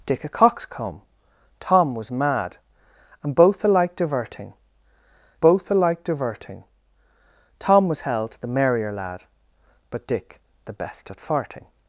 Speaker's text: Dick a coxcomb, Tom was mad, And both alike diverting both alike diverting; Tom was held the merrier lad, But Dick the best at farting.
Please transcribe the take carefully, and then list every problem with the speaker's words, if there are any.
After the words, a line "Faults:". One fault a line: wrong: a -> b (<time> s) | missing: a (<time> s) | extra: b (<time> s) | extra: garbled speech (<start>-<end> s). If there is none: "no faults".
Dick a coxcomb, Tom was mad, And both alike diverting both alike diverting; Tom was held the merrier lad, But Dick the best at farting.
Faults:
no faults